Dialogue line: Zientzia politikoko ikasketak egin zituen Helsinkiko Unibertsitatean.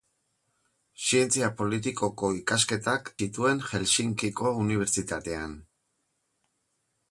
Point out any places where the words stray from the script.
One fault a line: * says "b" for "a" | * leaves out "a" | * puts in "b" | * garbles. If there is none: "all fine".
* leaves out "egin"